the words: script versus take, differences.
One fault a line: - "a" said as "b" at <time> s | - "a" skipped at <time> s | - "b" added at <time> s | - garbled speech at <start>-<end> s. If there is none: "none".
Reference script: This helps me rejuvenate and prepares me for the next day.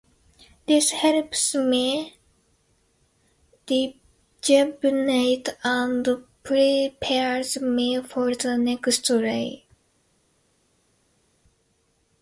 none